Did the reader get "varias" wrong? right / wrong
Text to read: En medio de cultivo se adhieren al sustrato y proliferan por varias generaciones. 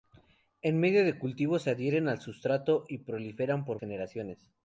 wrong